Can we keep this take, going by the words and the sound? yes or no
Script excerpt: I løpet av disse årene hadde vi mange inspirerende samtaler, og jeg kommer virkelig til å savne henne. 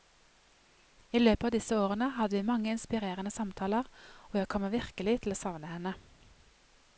yes